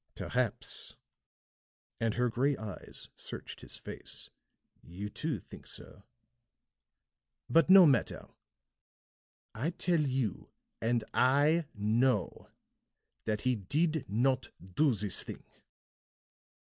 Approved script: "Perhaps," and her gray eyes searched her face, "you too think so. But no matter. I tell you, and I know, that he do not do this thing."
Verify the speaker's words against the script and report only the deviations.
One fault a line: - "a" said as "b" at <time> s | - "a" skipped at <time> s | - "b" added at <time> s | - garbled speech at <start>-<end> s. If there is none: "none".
- "her" said as "his" at 3.6 s
- "do" said as "did" at 13.5 s